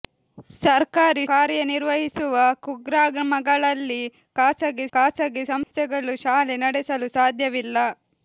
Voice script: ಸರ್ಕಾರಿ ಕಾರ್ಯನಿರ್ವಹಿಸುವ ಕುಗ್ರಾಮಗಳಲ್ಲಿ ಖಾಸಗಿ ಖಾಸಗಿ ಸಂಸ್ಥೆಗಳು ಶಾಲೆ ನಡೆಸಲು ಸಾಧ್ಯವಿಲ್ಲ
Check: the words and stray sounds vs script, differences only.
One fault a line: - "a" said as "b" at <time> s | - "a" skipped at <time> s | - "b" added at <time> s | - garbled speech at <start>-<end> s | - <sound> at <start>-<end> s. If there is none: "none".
- dropout at 5.6-5.7 s